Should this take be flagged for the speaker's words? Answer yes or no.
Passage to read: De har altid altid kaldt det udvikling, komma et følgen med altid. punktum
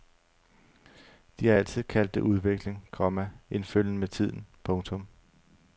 yes